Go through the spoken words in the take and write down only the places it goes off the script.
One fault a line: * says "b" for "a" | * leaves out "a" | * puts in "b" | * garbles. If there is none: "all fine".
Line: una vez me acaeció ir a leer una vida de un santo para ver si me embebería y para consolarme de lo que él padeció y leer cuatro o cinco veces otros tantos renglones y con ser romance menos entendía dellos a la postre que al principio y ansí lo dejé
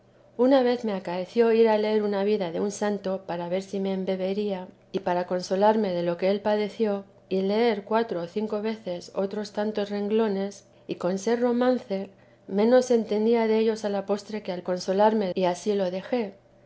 * says "consolarme" for "principio"